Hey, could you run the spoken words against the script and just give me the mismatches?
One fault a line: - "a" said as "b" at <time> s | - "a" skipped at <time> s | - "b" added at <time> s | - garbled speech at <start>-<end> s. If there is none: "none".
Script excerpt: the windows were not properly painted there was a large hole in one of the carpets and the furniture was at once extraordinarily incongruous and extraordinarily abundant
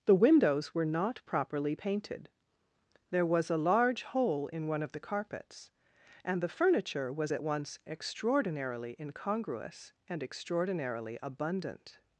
none